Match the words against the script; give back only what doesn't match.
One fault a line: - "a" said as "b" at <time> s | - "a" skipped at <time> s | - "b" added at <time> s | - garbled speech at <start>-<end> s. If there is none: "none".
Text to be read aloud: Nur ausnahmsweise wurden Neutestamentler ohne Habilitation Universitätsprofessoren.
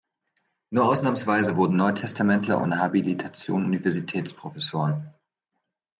none